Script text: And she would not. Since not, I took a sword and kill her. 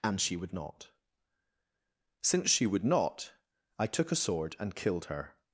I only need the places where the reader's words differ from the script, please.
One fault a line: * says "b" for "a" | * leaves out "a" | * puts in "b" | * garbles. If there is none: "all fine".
* puts in "she would"
* says "killed" for "kill"